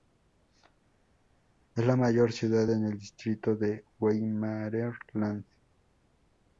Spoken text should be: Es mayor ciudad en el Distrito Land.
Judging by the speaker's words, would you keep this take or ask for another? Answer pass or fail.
fail